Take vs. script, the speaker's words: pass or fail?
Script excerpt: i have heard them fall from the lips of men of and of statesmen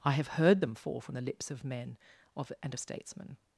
pass